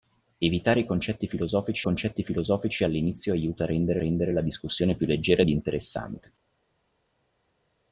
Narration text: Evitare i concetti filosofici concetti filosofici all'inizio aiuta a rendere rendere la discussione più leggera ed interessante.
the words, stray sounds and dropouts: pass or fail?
pass